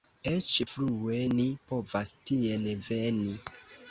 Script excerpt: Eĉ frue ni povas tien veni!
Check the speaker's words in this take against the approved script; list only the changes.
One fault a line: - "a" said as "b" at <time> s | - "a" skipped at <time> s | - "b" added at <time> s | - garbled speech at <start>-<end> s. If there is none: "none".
none